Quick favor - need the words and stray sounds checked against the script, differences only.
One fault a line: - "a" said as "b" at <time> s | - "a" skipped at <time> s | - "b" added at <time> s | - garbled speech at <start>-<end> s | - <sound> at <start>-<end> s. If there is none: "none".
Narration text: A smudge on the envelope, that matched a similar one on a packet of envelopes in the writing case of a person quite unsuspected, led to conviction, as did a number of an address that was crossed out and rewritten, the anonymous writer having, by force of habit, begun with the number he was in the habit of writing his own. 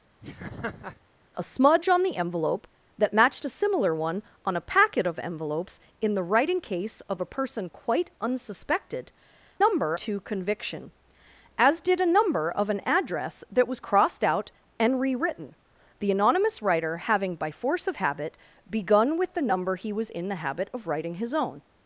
- laugh at 0.2-1.0 s
- "led" said as "number" at 9.6 s